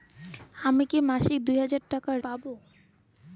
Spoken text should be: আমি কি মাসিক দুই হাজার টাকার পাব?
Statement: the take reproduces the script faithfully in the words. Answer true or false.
true